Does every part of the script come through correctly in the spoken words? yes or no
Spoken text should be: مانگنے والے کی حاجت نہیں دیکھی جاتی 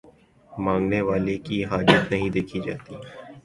yes